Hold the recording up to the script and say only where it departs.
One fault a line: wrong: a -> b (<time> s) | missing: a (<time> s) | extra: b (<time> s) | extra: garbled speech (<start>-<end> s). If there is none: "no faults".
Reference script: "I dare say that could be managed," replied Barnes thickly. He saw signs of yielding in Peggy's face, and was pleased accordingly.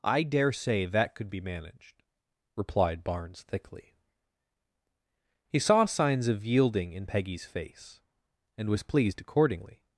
no faults